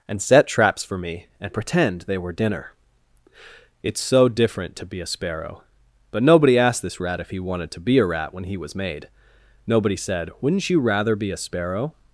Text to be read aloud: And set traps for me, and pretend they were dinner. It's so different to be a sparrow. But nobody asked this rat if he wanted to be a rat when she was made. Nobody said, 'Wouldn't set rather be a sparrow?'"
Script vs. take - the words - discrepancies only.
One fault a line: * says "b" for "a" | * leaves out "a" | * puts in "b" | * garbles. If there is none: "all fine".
* says "he" for "she"
* says "you" for "set"